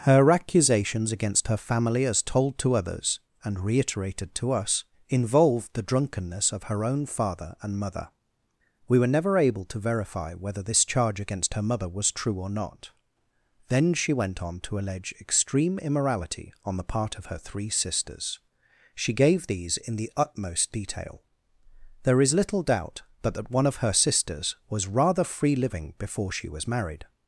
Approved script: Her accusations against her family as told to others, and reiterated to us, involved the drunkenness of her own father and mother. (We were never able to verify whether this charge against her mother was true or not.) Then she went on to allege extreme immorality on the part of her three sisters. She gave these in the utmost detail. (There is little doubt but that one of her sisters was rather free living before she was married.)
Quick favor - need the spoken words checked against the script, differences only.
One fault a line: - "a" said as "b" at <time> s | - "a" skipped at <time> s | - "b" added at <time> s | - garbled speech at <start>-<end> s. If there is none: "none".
none